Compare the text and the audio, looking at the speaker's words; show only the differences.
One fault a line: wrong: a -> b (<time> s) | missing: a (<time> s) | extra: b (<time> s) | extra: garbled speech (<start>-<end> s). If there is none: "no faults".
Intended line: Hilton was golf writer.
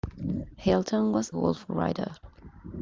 no faults